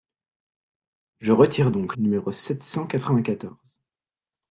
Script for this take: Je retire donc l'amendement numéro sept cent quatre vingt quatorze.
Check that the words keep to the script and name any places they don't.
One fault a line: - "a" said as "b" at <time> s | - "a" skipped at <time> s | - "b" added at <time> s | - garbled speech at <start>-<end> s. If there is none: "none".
- "l'amendement" skipped at 1.9 s